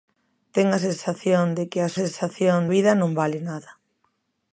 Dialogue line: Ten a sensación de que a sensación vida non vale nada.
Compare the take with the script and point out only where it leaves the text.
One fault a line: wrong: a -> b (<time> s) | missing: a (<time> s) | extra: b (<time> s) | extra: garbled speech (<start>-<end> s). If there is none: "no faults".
no faults